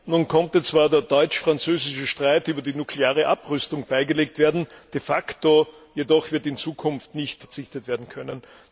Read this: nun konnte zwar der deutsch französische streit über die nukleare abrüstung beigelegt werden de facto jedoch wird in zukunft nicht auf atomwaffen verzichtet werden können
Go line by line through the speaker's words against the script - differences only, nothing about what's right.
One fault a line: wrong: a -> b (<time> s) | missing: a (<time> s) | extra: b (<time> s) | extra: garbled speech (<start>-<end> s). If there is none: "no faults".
missing: auf atomwaffen (7.4 s)